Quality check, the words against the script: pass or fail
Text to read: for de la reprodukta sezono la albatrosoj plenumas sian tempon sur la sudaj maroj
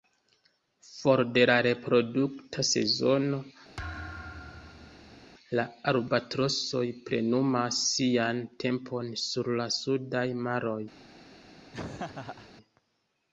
pass